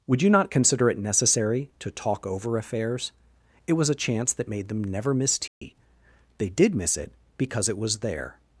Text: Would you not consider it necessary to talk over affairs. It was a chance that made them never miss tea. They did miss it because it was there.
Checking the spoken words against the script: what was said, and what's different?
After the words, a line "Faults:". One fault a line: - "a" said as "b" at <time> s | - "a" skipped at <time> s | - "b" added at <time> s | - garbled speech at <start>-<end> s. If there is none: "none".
Would you not consider it necessary to talk over affairs. It was a chance that made them never miss tea. They did miss it because it was there.
Faults:
none